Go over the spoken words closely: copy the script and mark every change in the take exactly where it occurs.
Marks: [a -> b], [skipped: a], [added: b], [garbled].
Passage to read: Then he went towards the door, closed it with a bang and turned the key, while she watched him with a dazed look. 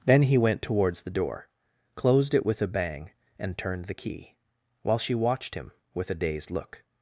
Then he went towards the door, closed it with a bang and turned the key, while she watched him with a dazed look.